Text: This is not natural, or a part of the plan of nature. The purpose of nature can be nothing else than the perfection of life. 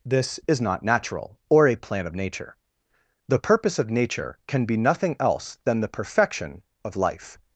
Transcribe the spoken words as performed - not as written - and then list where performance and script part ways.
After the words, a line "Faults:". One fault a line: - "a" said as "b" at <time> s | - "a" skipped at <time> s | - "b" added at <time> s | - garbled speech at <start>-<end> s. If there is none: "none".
This is not natural, or a plan of nature. The purpose of nature can be nothing else than the perfection of life.
Faults:
- "part of the" skipped at 1.8 s